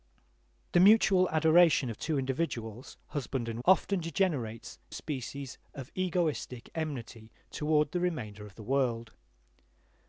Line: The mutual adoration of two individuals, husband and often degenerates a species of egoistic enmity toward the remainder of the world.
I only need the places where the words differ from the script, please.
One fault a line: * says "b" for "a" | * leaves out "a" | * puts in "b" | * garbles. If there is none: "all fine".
all fine